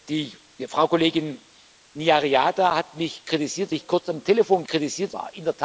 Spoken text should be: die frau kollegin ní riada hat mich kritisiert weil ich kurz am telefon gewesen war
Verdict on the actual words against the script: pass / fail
fail